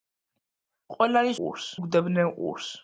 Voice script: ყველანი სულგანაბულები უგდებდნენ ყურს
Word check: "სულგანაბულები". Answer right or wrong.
wrong